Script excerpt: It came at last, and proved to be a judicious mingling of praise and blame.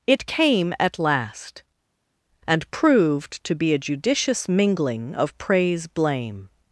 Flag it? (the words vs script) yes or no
yes